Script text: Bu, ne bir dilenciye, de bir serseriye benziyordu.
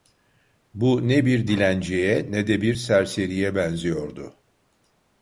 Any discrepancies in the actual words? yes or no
yes